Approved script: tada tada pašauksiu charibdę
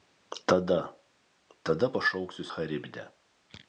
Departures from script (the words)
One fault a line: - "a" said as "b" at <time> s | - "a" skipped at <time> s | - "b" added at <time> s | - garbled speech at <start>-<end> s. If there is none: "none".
none